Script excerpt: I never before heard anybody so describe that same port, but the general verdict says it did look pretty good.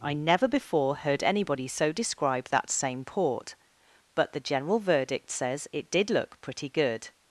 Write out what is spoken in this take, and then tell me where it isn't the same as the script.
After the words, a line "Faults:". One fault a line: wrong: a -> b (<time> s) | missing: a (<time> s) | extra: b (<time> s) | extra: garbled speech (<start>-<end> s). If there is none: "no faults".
I never before heard anybody so describe that same port, but the general verdict says it did look pretty good.
Faults:
no faults